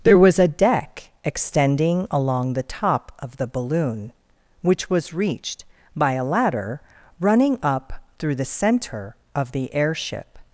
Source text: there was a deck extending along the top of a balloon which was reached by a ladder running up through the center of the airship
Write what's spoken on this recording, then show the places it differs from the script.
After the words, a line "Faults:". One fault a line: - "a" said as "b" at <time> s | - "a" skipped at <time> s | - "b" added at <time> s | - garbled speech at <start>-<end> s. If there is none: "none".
there was a deck extending along the top of the balloon which was reached by a ladder running up through the center of the airship
Faults:
- "a" said as "the" at 3.4 s